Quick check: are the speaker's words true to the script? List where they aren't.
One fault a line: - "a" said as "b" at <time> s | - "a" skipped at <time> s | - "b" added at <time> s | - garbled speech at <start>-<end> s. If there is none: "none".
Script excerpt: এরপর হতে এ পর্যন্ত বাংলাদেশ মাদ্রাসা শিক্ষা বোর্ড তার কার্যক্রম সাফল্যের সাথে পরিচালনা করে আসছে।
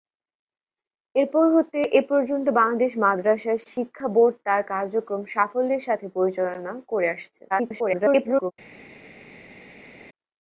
- garbled speech at 7.5-8.5 s